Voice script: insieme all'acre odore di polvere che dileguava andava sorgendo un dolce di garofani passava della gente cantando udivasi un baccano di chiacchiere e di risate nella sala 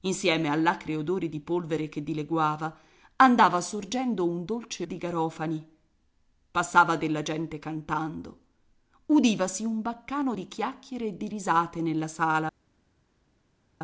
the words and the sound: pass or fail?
pass